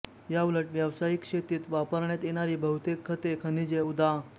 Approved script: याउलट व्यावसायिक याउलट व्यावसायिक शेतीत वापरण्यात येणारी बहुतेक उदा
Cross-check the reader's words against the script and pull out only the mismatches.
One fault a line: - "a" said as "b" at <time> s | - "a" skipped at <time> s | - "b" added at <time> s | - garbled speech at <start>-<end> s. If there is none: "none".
- "याउलट व्यावसायिक" skipped at 1.2 s
- "खते खनिजे" added at 3.0 s